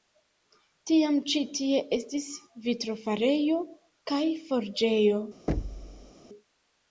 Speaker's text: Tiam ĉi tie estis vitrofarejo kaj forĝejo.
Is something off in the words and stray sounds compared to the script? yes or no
yes